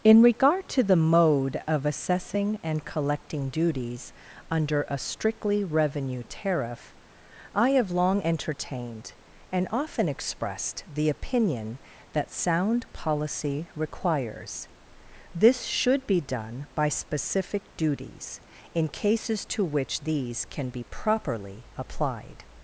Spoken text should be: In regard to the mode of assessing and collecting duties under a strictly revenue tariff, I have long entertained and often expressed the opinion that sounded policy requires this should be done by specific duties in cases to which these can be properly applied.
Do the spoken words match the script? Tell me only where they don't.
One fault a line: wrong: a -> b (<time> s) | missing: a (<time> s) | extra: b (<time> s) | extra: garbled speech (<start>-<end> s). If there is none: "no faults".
wrong: sounded -> sound (12.3 s)